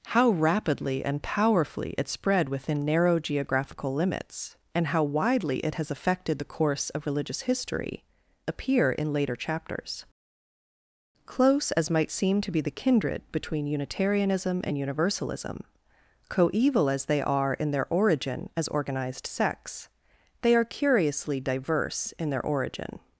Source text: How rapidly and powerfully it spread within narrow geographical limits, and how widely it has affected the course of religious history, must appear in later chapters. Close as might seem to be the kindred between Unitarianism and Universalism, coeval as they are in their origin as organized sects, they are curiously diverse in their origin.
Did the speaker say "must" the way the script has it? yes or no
no